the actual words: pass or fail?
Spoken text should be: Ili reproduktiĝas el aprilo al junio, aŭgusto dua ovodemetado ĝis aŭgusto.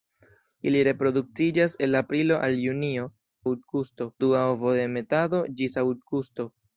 pass